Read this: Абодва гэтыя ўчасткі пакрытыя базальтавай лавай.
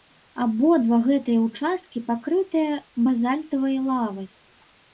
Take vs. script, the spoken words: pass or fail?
pass